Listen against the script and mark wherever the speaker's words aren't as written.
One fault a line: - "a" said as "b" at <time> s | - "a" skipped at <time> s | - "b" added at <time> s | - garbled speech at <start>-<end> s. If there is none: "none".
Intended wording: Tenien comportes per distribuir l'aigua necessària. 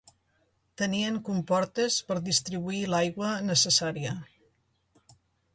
none